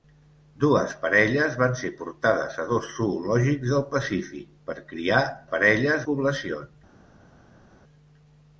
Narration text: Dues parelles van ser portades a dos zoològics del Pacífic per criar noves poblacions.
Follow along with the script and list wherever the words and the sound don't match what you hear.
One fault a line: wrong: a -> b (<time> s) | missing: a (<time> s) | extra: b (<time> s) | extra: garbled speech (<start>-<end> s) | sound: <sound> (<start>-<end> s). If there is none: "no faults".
wrong: noves -> parelles (5.5 s)